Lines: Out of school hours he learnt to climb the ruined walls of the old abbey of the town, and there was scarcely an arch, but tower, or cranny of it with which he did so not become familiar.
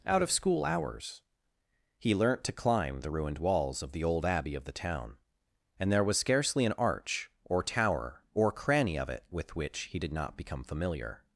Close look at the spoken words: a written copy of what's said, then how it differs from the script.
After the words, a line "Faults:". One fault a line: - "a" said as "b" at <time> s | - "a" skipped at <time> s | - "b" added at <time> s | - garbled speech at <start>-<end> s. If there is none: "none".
Out of school hours he learnt to climb the ruined walls of the old abbey of the town, and there was scarcely an arch, or tower, or cranny of it with which he did not become familiar.
Faults:
- "but" said as "or" at 7.4 s
- "so" skipped at 10.1 s